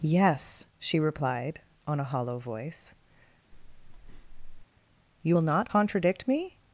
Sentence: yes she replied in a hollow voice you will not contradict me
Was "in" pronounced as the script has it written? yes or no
no